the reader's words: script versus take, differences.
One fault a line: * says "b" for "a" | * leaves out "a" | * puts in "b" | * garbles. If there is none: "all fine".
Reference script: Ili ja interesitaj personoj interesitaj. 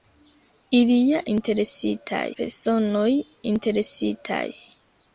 all fine